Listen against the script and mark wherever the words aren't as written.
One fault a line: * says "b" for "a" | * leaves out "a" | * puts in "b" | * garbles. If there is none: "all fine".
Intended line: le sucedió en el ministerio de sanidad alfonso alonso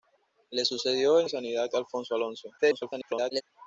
* leaves out "el ministerio"
* garbles